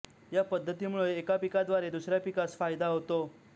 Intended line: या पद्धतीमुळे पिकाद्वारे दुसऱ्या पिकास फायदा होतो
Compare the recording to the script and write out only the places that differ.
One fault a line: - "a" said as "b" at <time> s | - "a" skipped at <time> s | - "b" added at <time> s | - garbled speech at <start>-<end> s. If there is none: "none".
- "एका" added at 1.2 s